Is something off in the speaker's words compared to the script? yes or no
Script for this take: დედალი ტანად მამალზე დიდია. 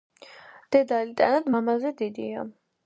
no